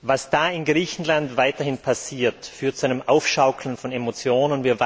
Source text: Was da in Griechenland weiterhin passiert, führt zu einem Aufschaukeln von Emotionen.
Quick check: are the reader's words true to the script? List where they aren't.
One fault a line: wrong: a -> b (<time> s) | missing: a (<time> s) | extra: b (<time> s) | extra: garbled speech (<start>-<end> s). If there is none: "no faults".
no faults